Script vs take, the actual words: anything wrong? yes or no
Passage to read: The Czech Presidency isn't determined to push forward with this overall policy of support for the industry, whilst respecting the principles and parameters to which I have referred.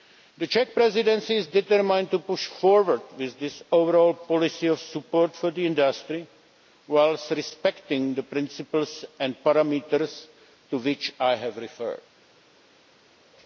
yes